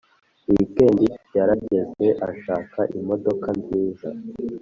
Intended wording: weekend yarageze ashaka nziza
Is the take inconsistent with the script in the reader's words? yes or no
yes